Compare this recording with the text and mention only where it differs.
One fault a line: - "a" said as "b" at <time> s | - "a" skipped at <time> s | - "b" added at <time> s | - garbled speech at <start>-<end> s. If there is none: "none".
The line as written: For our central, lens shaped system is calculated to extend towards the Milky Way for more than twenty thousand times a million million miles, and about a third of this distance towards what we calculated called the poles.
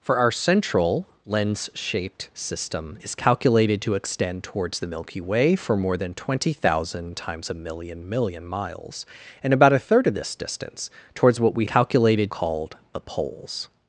none